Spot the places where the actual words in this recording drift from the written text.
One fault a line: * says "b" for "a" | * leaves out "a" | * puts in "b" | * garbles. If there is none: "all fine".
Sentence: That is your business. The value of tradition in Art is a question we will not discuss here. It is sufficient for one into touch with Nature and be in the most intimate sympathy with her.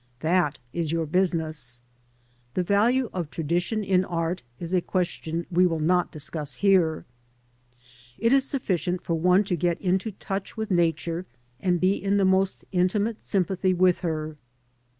* puts in "to get"